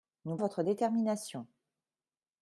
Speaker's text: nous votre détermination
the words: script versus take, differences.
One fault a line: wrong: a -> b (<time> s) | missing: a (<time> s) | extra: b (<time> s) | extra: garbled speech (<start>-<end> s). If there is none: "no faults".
no faults